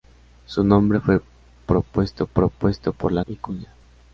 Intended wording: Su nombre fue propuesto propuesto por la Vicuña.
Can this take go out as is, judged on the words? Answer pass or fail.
pass